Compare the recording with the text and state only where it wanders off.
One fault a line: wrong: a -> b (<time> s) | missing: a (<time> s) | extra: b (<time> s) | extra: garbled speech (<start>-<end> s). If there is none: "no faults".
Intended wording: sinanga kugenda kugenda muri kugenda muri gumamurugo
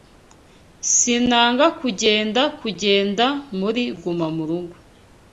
missing: kugenda muri (3.8 s)